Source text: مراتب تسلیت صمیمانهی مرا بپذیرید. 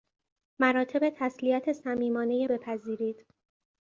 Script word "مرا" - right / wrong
wrong